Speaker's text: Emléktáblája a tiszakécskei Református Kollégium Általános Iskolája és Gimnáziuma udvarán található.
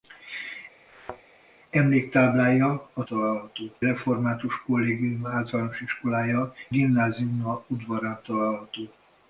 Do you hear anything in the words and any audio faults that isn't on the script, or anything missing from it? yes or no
yes